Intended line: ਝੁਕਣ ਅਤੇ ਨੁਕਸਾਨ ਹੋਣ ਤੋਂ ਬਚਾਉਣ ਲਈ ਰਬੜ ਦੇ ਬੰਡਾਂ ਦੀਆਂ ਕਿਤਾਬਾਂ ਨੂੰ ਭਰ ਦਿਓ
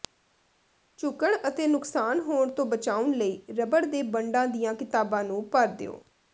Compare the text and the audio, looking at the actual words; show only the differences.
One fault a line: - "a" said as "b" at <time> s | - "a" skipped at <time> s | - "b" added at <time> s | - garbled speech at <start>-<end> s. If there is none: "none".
none